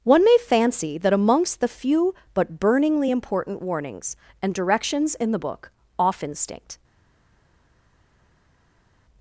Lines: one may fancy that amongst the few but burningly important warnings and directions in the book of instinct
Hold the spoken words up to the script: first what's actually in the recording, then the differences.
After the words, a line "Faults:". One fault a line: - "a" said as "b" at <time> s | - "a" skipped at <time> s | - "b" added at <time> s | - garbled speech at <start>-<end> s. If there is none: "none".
one may fancy that amongst the few but burningly important warnings and directions in the book off instinct
Faults:
- "of" said as "off" at 6.0 s